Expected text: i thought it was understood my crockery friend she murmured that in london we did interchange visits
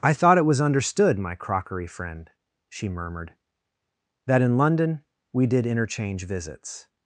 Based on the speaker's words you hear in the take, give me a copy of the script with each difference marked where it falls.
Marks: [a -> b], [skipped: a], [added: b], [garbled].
i thought it was understood my crockery friend she murmured that in london we did interchange visits